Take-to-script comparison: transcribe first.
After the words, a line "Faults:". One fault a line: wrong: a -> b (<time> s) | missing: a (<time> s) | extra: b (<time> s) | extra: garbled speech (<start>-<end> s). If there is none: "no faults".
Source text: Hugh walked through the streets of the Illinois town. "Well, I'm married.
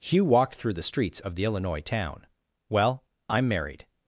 Hugh walked through the streets of the Illinois town. "Well, I'm married.
Faults:
no faults